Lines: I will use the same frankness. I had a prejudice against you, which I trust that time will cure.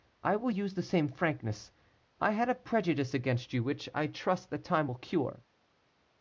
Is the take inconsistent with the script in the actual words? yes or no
no